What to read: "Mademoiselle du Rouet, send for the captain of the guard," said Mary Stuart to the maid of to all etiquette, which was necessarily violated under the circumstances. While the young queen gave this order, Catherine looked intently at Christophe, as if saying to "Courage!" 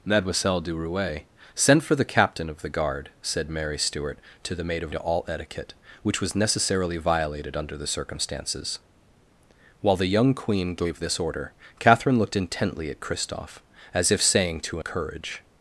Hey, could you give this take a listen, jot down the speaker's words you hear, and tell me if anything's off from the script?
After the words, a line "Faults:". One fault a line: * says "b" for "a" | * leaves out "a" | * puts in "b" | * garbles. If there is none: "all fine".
"Mademoiselle du Rouet, send for the captain of the guard," said Mary Stuart to the maid of to all etiquette, which was necessarily violated under the circumstances. While the young queen gave this order, Catherine looked intently at Christophe, as if saying to "Courage!"
Faults:
all fine